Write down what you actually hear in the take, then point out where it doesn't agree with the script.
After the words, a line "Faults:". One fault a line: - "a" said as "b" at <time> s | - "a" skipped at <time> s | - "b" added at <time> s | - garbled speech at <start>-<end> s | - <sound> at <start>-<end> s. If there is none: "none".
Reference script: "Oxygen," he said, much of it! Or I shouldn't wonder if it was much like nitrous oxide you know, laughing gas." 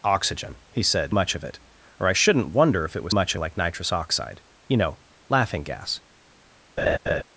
"Oxygen," he said, much of it! Or I shouldn't wonder if it was much like nitrous oxide you know, laughing gas."
Faults:
- laugh at 6.8-7.2 s